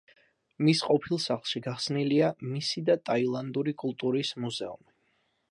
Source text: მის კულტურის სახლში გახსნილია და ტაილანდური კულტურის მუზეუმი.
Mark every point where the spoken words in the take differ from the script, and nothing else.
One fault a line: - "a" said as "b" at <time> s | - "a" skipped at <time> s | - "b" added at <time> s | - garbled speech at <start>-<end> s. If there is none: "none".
- "კულტურის" said as "ყოფილ" at 0.8 s
- "მისი" added at 2.5 s